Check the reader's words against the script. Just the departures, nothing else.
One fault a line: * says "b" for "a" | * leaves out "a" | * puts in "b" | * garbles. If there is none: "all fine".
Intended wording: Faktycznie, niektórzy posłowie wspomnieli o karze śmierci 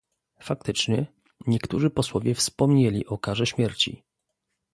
all fine